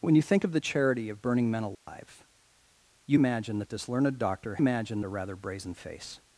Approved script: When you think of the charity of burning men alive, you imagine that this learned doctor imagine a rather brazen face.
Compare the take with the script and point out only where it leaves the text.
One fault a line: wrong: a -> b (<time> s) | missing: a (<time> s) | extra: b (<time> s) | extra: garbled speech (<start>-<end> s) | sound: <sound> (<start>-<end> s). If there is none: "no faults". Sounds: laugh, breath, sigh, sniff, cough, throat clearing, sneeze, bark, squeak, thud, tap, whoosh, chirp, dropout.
sound: dropout (1.7-1.9 s)